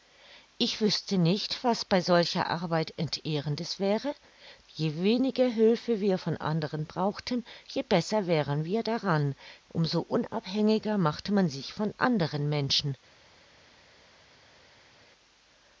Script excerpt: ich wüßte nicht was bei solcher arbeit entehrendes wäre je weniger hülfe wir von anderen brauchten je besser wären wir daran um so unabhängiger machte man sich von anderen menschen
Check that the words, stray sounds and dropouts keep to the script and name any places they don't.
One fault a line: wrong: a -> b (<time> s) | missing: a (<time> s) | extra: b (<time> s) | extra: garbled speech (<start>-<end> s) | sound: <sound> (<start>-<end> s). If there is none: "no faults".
no faults